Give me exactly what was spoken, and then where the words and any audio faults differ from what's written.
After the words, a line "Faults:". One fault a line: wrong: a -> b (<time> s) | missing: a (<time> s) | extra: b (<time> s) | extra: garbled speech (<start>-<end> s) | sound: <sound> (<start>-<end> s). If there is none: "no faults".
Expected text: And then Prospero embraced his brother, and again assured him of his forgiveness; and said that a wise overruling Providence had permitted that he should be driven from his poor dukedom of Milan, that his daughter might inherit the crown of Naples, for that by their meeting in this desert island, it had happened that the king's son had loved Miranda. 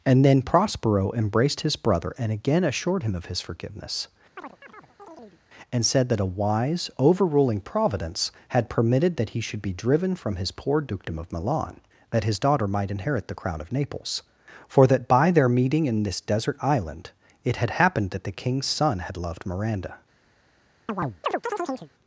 And then Prospero embraced his brother, and again assured him of his forgiveness; and said that a wise overruling Providence had permitted that he should be driven from his poor dukedom of Milan, that his daughter might inherit the crown of Naples, for that by their meeting in this desert island, it had happened that the king's son had loved Miranda.
Faults:
sound: chirp (4.4-5.4 s)
sound: chirp (20.9-21.9 s)